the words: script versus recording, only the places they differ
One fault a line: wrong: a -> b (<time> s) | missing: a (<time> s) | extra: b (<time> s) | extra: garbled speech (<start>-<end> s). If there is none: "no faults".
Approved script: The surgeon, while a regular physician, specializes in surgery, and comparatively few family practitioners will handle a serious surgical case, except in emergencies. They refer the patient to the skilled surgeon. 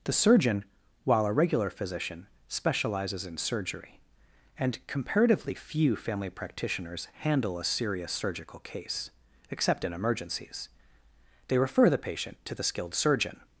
missing: will (7.1 s)